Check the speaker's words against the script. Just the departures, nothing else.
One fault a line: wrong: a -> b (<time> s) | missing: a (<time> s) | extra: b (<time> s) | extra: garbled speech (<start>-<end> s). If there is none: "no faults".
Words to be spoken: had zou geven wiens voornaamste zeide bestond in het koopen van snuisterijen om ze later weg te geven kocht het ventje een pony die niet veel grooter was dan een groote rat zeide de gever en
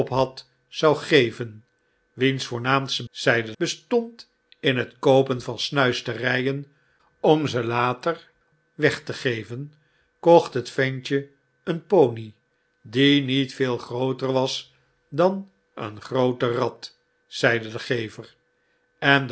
no faults